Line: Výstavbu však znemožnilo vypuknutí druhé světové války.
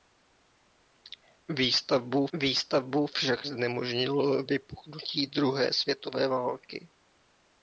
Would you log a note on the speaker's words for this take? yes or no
yes